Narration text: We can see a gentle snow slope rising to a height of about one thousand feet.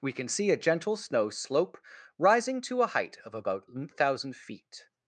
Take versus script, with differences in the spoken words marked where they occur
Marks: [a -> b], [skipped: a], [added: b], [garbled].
We can see a gentle snow slope rising to a height of about one thousand feet.